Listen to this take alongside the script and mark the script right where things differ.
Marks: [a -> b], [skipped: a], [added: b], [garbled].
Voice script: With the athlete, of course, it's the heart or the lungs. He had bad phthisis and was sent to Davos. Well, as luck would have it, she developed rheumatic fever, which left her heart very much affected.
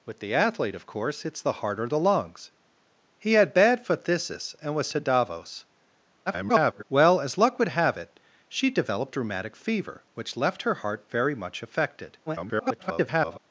With the athlete, of course, it's the heart or the lungs. He had bad phthisis and was [skipped: sent] to Davos. [garbled] Well, as luck would have it, she developed rheumatic fever, which left her heart very much affected. [garbled]